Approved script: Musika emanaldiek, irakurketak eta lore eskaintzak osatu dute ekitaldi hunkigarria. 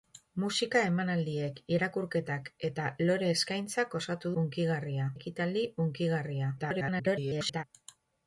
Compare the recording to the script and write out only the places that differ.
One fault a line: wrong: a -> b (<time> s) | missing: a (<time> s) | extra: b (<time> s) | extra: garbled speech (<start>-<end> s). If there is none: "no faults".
wrong: dute -> hunkigarria (4.4 s)
extra: garbled speech (6.6-7.6 s)